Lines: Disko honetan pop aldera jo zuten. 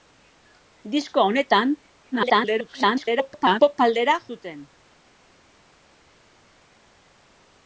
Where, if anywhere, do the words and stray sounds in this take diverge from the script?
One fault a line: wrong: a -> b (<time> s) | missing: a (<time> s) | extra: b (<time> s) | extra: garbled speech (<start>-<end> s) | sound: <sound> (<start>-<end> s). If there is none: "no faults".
extra: garbled speech (2.1-3.6 s)
missing: jo (4.2 s)